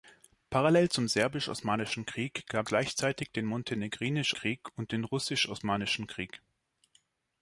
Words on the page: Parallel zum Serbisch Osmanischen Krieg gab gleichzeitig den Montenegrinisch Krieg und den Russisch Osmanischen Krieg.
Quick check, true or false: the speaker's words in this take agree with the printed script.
true